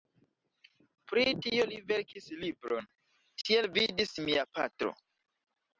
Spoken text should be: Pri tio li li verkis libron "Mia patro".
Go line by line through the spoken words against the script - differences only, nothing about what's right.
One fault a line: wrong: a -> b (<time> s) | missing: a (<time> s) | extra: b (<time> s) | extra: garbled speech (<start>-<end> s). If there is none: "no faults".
missing: li (1.8 s)
extra: Tiel vidis (3.4 s)